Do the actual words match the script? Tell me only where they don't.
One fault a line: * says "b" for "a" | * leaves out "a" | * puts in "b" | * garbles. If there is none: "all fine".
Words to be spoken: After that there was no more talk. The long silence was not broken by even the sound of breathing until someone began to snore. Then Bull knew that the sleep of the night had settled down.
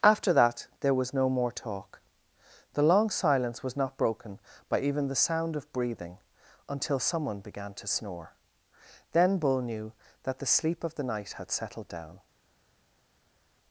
all fine